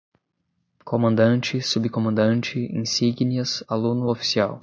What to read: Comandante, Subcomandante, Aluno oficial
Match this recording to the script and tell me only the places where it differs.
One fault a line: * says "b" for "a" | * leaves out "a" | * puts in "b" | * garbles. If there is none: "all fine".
* puts in "insígnias"